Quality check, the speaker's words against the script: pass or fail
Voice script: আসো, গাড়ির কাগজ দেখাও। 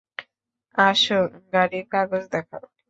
pass